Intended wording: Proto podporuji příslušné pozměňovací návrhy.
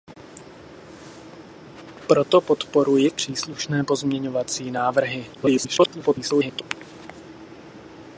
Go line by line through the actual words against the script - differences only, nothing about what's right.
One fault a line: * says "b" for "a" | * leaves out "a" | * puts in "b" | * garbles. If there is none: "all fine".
* garbles